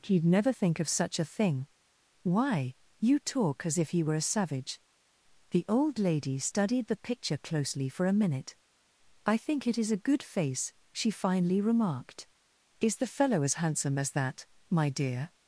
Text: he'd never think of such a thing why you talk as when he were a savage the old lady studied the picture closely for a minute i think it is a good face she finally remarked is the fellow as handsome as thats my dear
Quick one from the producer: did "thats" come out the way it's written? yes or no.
no